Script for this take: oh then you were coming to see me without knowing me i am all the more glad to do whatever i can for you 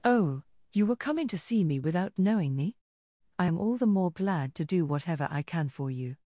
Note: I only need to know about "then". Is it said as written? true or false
false